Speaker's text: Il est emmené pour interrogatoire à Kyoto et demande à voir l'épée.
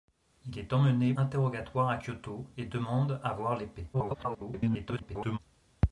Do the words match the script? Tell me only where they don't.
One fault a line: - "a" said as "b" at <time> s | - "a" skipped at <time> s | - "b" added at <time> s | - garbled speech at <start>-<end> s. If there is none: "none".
- "pour" skipped at 1.1 s
- garbled speech at 3.9-5.4 s